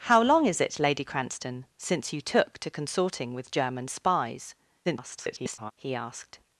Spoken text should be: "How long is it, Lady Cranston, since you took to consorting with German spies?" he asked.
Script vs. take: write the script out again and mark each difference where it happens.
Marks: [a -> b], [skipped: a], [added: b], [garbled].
"How long is it, Lady Cranston, since you took to consorting with German spies?" [garbled] he asked.